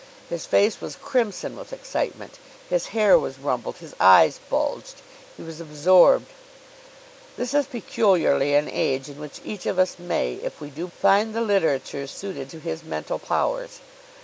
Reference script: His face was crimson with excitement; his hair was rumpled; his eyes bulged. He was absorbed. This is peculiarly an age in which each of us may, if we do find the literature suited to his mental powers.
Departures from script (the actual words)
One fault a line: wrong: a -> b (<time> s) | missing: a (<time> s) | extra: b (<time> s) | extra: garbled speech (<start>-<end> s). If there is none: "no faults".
no faults